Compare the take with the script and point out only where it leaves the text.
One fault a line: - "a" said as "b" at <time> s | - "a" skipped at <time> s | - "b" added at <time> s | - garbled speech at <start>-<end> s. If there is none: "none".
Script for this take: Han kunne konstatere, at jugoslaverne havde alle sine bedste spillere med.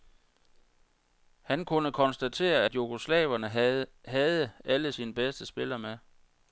none